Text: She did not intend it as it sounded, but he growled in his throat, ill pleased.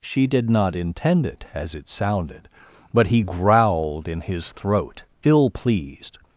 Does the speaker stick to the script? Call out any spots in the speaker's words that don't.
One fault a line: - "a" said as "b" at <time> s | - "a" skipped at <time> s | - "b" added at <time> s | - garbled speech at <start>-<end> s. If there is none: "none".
none